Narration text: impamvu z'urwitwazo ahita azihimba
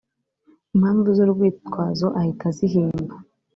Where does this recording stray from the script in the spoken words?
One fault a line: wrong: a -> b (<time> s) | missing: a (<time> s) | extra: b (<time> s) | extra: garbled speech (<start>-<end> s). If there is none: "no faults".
no faults